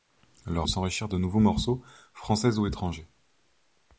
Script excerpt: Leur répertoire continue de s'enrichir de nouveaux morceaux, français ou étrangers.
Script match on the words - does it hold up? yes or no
no